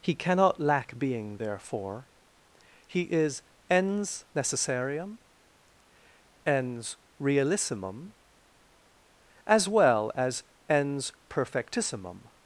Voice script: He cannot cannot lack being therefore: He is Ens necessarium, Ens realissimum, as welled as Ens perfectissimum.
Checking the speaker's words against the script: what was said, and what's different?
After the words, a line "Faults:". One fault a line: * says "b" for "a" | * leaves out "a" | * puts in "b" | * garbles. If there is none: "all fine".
He cannot lack being therefore: He is Ens necessarium, Ens realissimum, as well as Ens perfectissimum.
Faults:
* leaves out "cannot"
* says "well" for "welled"